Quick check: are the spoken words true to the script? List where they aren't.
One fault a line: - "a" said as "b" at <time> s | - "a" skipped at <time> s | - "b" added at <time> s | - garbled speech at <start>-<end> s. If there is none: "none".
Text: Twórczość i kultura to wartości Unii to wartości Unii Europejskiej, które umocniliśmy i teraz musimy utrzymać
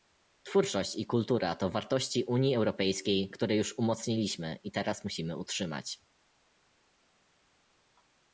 - "to wartości Unii" skipped at 2.5 s
- "już" added at 3.5 s